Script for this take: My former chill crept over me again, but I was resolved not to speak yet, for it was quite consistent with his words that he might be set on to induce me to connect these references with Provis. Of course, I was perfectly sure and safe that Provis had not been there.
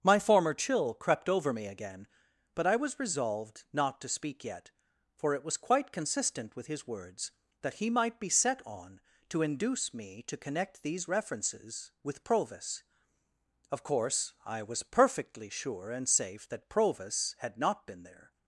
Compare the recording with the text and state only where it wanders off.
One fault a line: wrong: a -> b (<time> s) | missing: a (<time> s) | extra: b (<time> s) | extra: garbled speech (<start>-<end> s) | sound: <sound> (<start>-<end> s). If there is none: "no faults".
no faults